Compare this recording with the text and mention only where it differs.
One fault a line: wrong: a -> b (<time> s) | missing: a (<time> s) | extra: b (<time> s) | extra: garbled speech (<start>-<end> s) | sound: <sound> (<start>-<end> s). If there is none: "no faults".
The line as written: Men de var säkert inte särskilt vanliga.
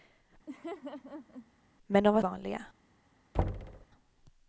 sound: laugh (0.5-1.5 s)
missing: säkert inte särskilt (2.2 s)
sound: thud (3.3-3.9 s)